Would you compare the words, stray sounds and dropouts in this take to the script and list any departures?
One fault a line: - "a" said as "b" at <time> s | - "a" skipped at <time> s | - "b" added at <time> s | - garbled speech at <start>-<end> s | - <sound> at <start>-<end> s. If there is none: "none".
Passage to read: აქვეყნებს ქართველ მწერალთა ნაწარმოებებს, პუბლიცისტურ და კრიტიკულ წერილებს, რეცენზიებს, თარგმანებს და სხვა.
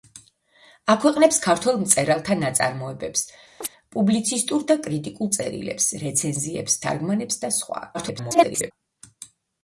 - chirp at 3.6-3.7 s
- garbled speech at 7.9-8.7 s